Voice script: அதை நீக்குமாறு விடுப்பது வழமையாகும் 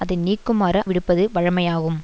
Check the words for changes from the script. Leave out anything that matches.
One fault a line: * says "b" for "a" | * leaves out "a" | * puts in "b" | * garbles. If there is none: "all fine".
all fine